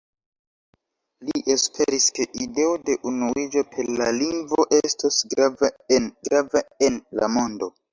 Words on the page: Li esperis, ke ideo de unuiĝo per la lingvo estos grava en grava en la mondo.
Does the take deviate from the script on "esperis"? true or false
false